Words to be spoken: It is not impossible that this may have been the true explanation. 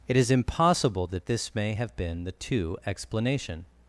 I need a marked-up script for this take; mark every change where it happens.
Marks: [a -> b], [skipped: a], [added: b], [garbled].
It is [skipped: not] impossible that this may have been the [true -> two] explanation.